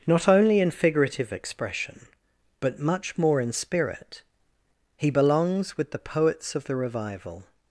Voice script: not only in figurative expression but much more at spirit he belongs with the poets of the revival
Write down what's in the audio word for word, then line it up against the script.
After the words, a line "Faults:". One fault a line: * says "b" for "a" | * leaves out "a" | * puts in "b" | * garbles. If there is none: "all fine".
not only in figurative expression but much more in spirit he belongs with the poets of the revival
Faults:
* says "in" for "at"